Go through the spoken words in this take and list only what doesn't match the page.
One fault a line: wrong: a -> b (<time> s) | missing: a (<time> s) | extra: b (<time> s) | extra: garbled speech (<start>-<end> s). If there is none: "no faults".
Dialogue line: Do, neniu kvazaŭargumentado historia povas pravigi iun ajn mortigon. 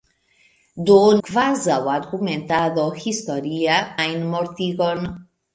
missing: neniu (0.9 s)
missing: povas pravigi iun (3.8 s)